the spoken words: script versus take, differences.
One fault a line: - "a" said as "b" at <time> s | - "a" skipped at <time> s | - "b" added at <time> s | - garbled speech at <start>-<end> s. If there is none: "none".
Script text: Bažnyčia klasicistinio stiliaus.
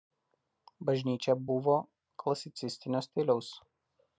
- "buvo" added at 1.5 s